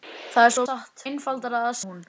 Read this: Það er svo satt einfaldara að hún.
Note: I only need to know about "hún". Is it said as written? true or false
true